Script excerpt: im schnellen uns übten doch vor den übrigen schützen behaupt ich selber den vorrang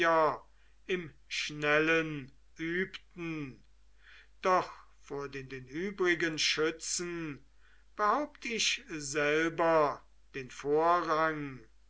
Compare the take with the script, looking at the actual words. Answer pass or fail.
fail